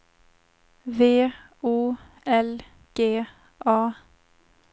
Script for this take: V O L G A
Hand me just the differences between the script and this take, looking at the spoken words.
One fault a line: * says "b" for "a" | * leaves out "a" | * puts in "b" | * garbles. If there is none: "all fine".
all fine